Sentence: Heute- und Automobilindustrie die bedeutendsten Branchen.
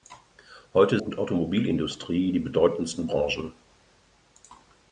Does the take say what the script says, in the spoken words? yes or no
yes